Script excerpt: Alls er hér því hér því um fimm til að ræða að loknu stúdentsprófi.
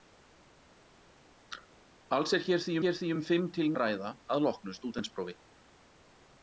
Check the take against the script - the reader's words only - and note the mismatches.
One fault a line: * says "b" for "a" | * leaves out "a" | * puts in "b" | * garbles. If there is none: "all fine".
all fine